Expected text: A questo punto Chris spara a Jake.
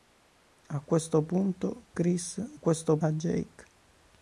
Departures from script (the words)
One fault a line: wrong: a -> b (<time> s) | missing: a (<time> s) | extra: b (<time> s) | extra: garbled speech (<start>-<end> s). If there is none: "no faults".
wrong: spara -> questo (2.5 s)